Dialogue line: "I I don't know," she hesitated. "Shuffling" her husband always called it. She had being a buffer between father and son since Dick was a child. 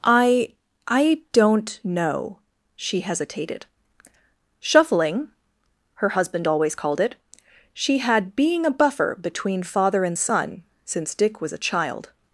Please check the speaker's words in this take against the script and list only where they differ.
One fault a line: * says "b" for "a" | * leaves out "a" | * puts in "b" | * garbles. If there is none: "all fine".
all fine